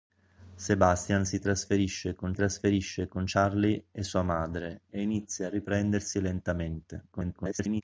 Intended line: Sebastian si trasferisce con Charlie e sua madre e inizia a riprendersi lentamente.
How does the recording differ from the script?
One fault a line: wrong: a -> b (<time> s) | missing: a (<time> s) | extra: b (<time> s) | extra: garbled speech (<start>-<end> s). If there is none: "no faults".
extra: trasferisce con (2.3 s)
extra: garbled speech (7.1-7.8 s)